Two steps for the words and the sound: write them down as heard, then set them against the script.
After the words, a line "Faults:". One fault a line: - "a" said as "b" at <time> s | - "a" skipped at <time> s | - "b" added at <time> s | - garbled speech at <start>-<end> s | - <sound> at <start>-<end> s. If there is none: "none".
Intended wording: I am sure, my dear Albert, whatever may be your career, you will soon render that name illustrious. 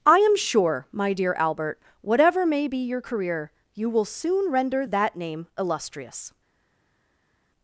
I am sure, my dear Albert, whatever may be your career, you will soon render that name illustrious.
Faults:
none